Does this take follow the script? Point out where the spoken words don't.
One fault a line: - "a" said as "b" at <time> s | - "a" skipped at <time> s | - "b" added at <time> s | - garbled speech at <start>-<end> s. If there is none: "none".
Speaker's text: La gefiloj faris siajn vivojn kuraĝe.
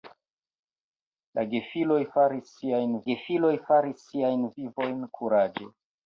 - "gefiloj faris siajn" added at 3.1 s